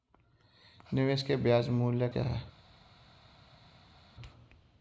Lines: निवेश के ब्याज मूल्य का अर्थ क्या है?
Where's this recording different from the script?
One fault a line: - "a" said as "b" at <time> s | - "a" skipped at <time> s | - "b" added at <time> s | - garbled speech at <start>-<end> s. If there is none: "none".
- "का अर्थ" skipped at 2.1 s